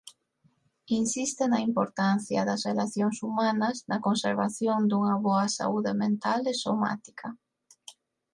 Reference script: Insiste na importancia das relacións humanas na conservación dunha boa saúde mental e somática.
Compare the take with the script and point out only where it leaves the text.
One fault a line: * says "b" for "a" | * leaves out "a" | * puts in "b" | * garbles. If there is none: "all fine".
all fine